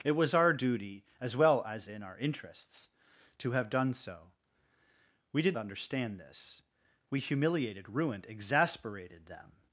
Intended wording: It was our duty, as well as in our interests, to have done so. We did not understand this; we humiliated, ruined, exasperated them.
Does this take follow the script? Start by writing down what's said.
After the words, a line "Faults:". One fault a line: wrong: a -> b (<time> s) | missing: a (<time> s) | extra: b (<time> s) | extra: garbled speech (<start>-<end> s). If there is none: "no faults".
It was our duty, as well as in our interests, to have done so. We did understand this; we humiliated, ruined, exasperated them.
Faults:
missing: not (5.6 s)